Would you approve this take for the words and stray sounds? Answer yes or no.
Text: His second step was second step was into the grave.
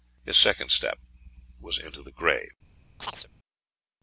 no